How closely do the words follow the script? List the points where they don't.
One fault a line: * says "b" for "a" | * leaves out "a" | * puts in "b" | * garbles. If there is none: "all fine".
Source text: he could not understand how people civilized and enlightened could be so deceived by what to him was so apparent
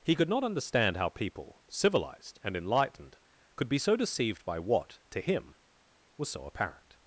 all fine